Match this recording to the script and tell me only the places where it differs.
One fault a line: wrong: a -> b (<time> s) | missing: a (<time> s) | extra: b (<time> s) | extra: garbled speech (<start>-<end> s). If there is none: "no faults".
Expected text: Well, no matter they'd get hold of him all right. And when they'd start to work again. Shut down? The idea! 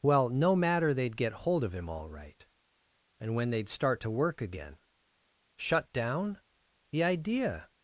no faults